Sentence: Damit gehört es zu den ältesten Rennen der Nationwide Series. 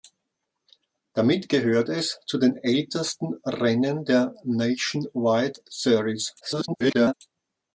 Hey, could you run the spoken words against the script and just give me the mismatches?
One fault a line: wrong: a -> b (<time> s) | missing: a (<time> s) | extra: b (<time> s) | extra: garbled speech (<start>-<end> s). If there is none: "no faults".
extra: garbled speech (6.4-7.1 s)